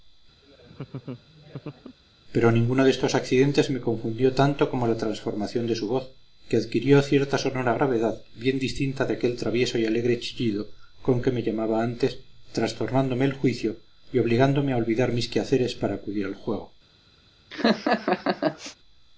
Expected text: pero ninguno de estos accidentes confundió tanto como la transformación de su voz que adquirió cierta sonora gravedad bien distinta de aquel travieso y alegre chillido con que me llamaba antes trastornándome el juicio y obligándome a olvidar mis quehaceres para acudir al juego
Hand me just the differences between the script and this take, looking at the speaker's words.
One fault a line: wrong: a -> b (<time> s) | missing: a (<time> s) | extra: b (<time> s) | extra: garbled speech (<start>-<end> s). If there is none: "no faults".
extra: me (3.7 s)